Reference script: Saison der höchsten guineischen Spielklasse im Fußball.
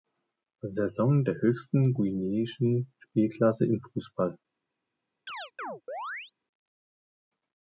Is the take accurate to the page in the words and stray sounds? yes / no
no